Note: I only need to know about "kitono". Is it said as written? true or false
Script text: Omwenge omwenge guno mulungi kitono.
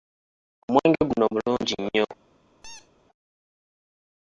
false